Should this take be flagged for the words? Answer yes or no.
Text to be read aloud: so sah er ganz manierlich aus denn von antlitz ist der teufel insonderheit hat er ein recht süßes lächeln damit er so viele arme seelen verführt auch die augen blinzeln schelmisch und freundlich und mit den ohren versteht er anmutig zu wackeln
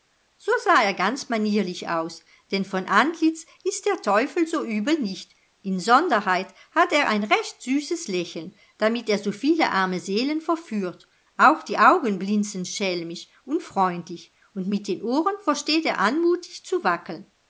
yes